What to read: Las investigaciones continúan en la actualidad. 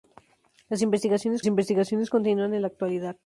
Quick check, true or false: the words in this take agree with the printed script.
false